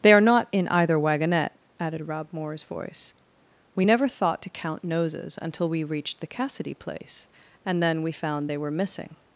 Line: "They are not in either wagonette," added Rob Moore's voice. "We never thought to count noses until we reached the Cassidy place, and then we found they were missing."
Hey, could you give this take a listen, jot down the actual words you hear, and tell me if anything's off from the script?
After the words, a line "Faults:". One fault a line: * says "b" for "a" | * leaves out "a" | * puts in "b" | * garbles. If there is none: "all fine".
"They are not in either wagonette," added Rob Moore's voice. "We never thought to count noses until we reached the Cassidy place, and then we found they were missing."
Faults:
all fine